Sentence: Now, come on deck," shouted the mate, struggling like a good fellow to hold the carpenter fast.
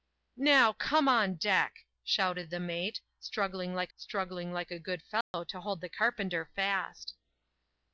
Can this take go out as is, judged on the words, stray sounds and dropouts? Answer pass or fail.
fail